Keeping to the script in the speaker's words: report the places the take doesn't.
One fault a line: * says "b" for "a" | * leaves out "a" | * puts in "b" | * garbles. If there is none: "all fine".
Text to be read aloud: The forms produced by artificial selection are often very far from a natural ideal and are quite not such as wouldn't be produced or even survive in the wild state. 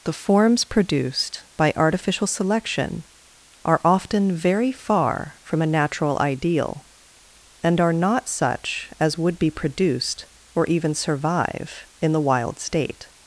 * leaves out "quite"
* says "would" for "wouldn't"